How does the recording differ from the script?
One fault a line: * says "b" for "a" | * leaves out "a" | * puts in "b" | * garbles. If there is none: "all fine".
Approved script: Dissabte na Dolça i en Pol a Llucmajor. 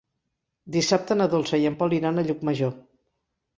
* puts in "iran"